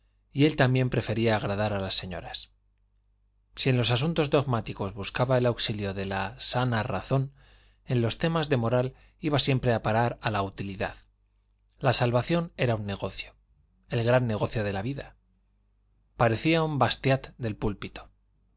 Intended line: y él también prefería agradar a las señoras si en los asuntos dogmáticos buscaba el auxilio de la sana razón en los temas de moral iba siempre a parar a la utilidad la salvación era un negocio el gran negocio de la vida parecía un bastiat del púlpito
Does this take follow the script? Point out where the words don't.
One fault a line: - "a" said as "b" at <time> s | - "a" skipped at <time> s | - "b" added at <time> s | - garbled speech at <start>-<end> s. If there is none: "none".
none